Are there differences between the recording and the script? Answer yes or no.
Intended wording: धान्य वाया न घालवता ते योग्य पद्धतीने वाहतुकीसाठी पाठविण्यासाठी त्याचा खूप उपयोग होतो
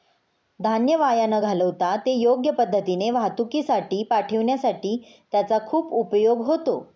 no